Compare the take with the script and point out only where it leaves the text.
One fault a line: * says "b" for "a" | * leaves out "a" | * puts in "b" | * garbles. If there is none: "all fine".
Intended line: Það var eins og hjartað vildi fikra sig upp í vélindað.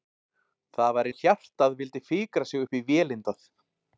* leaves out "eins"